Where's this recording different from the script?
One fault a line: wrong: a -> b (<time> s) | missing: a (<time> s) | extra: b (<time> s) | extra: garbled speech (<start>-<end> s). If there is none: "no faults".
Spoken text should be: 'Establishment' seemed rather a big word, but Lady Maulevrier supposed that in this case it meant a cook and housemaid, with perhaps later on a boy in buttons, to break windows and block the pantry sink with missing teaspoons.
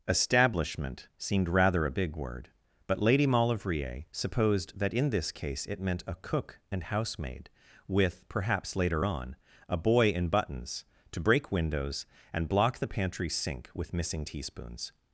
no faults